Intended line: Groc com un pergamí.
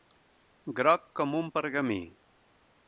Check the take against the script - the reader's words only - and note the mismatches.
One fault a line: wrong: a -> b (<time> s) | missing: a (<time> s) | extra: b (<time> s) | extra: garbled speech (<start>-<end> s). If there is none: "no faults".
no faults